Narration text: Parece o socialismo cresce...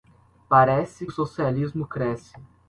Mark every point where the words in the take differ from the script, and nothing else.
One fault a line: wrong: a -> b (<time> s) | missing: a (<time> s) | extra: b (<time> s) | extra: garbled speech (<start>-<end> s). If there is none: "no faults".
no faults